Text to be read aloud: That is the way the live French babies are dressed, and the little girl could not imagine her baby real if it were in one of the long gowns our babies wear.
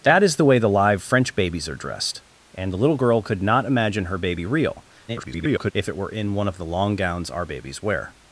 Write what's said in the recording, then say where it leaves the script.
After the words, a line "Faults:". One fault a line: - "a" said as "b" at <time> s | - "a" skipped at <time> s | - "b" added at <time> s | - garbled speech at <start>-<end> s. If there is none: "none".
That is the way the live French babies are dressed, and the little girl could not imagine her baby real [garbled] if it were in one of the long gowns our babies wear.
Faults:
- garbled speech at 5.1-5.7 s